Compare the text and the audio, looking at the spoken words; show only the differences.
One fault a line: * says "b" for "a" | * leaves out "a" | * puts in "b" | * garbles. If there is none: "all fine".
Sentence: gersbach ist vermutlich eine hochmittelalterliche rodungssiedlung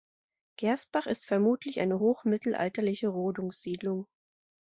all fine